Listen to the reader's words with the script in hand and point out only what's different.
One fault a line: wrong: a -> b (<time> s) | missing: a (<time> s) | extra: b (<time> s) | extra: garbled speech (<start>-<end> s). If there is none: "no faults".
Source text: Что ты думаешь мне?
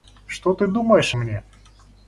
no faults